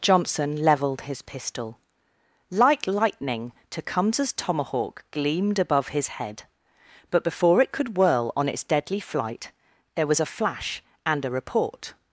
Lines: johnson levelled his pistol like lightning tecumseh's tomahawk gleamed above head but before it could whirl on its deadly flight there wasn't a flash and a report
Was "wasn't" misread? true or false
true